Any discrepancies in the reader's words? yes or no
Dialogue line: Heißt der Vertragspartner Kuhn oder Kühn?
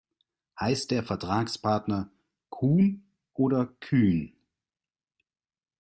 no